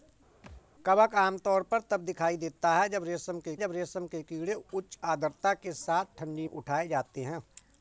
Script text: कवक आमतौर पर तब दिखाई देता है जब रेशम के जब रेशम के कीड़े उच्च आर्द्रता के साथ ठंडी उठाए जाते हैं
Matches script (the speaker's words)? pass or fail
pass